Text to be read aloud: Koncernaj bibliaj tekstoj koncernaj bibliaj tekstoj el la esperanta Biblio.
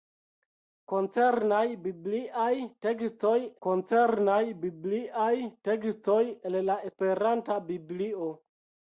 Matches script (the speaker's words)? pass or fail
pass